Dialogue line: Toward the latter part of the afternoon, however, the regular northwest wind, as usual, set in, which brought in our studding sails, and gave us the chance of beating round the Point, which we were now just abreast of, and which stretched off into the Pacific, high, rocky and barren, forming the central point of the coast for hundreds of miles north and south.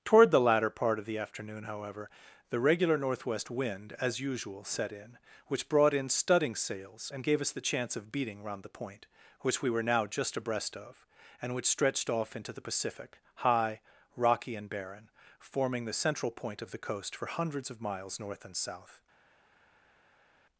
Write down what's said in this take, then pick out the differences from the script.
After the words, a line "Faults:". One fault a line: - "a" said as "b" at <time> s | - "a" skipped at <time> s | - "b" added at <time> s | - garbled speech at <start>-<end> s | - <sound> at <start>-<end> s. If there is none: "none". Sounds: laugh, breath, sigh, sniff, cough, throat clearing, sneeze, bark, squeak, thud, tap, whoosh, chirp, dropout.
Toward the latter part of the afternoon, however, the regular northwest wind, as usual, set in, which brought in studding sails, and gave us the chance of beating round the Point, which we were now just abreast of, and which stretched off into the Pacific, high, rocky and barren, forming the central point of the coast for hundreds of miles north and south.
Faults:
- "our" skipped at 6.1 s